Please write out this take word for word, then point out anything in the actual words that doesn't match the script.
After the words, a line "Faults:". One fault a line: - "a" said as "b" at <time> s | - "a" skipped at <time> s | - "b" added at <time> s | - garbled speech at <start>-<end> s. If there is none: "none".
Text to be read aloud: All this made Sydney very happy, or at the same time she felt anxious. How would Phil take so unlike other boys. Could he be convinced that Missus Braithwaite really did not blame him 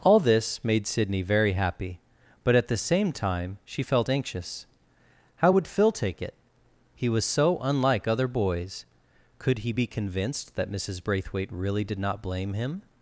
All this made Sydney very happy, but at the same time she felt anxious. How would Phil take it? He was so unlike other boys. Could he be convinced that Missus Braithwaite really did not blame him
Faults:
- "or" said as "but" at 2.4 s
- "it He was" added at 6.2 s